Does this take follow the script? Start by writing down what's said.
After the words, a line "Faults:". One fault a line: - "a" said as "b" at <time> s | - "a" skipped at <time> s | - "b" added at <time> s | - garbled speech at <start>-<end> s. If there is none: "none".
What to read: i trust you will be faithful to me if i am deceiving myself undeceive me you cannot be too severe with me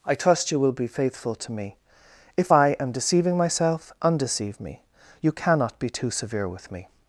i trust you will be faithful to me if i am deceiving myself undeceive me you cannot be too severe with me
Faults:
none